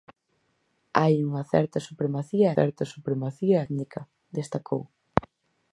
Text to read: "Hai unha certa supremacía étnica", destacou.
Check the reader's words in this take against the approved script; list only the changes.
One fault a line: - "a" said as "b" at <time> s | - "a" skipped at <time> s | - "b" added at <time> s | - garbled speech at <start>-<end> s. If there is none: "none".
- "certa supremacía" added at 2.6 s